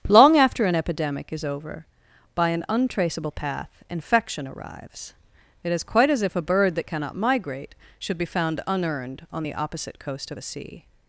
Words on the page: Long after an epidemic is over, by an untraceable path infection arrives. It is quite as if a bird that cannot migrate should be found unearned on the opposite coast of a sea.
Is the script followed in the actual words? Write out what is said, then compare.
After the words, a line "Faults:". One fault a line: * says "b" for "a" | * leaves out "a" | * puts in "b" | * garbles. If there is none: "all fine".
Long after an epidemic is over, by an untraceable path infection arrives. It is quite as if a bird that cannot migrate should be found unearned on the opposite coast of a sea.
Faults:
all fine